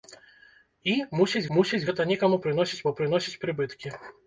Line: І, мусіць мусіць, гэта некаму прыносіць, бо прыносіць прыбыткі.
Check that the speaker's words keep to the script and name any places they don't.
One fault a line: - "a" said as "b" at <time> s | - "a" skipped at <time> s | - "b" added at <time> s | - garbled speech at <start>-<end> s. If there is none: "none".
none